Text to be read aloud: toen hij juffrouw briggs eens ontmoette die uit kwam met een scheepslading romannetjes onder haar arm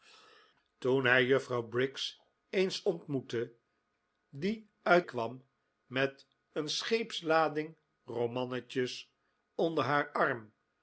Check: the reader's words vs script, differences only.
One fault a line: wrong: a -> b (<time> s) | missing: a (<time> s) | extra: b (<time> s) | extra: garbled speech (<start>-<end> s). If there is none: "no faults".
no faults